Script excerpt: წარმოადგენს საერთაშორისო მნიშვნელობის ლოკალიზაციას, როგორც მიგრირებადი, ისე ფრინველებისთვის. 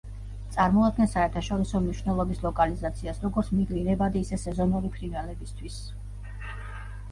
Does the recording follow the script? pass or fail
fail